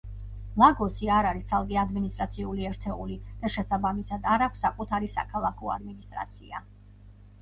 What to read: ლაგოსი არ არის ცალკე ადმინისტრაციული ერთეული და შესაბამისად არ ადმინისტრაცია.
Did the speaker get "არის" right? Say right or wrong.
right